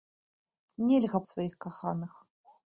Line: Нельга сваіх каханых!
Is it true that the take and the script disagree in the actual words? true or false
false